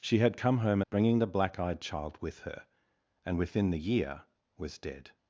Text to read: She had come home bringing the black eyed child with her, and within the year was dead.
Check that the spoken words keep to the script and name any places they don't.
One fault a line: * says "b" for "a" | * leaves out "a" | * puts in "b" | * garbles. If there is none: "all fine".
all fine